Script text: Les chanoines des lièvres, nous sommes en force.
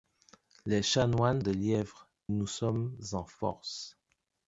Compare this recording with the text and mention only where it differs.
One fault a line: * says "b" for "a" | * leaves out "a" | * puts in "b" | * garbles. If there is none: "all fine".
all fine